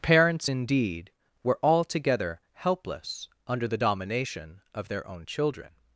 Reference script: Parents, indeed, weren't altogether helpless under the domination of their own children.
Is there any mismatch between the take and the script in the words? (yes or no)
yes